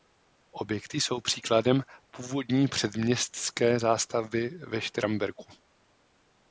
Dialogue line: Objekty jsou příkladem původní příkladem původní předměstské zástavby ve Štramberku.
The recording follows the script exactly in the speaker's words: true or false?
false